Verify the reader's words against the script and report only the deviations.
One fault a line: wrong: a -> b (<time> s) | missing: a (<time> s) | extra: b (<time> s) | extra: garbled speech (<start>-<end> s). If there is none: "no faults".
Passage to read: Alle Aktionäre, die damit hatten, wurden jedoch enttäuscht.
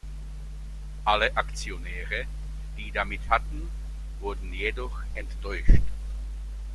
no faults